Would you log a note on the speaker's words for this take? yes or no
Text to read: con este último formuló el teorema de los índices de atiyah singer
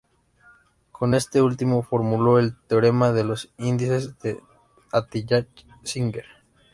no